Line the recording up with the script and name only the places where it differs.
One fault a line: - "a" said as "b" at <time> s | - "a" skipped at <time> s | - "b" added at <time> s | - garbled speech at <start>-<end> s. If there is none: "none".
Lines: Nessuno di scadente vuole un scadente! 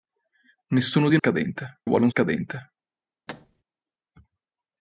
none